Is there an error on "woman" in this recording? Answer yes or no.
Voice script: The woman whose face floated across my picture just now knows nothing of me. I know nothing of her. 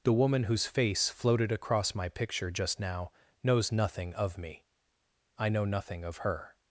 no